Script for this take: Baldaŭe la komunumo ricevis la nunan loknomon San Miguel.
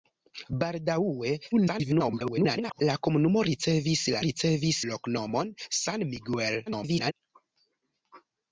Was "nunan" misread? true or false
true